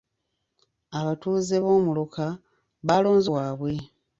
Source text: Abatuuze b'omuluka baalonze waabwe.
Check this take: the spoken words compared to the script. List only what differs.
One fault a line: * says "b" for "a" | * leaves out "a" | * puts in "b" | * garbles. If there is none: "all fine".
all fine